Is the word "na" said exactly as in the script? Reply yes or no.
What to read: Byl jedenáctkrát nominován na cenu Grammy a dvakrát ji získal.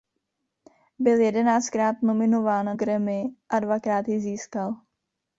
no